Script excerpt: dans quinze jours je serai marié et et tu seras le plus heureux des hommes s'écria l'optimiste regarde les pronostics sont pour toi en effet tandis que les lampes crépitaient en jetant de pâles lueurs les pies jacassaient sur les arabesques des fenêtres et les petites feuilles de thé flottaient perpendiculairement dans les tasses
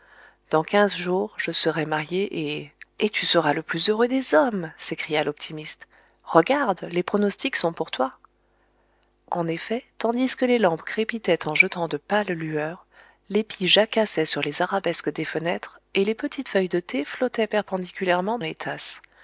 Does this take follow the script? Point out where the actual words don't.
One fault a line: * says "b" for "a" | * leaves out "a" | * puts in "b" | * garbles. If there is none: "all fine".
* leaves out "dans"